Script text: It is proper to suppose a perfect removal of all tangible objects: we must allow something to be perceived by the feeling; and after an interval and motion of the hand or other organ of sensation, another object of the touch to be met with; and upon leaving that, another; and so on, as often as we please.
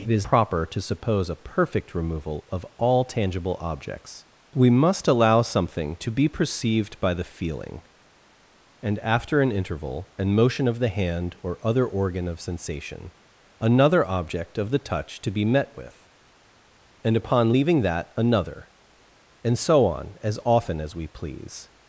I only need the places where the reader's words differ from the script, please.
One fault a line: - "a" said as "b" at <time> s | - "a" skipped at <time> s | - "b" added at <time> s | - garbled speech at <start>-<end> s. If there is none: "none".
none